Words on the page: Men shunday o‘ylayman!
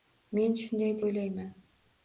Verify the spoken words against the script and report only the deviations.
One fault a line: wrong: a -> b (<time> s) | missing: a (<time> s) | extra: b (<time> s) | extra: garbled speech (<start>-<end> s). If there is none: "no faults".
no faults